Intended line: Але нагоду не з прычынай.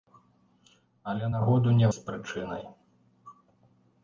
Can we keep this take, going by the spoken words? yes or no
yes